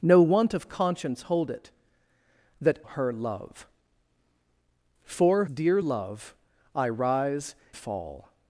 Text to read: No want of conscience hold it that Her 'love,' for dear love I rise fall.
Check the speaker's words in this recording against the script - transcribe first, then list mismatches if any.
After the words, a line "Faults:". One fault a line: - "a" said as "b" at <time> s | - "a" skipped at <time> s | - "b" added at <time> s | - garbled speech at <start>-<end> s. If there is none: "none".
No want of conscience hold it that Her 'love,' for dear love I rise fall.
Faults:
none